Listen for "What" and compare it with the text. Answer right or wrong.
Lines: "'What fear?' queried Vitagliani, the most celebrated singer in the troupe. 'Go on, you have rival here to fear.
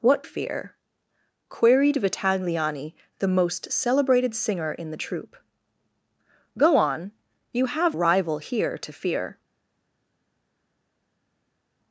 right